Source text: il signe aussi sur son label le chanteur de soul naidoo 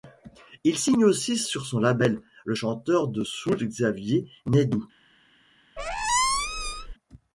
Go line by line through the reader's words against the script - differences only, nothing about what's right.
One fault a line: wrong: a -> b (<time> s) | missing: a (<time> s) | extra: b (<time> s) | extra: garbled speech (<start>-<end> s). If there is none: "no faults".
extra: xavier (3.6 s)